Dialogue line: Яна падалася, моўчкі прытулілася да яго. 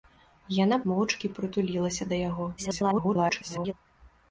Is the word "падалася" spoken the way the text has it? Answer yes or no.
no